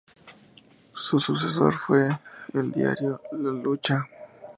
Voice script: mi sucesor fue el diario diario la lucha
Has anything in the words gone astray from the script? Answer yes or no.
yes